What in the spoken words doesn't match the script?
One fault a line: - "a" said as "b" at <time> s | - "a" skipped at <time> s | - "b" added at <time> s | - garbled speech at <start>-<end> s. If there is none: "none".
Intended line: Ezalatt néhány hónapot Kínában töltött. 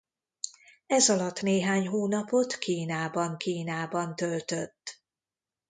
- "Kínában" added at 3.4 s